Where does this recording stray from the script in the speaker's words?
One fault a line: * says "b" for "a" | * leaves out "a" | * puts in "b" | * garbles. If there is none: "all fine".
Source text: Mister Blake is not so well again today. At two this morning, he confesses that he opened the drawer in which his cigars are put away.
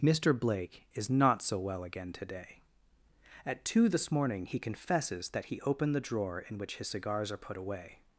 all fine